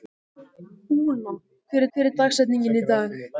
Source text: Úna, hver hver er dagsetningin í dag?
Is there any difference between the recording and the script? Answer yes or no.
no